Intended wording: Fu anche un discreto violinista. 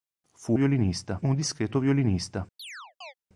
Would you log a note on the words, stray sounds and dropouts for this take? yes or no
yes